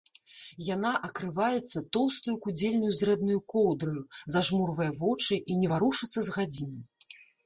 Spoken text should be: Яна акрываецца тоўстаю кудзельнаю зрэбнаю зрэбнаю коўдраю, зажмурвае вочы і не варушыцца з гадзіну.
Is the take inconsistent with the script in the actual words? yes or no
yes